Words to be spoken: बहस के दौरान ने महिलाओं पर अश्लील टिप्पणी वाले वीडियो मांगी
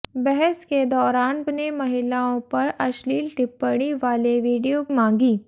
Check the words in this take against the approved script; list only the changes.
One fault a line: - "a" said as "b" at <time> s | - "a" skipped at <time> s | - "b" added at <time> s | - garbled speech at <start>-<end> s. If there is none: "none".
none